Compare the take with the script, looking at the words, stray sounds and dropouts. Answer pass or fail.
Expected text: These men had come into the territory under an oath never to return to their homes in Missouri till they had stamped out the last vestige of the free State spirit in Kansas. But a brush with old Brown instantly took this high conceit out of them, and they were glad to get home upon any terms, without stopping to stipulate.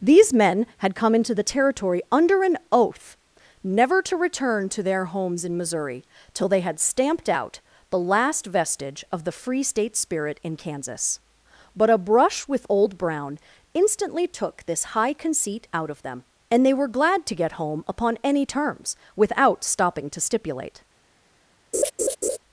fail